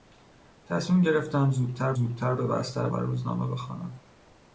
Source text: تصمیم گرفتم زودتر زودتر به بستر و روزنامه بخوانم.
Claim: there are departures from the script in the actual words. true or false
false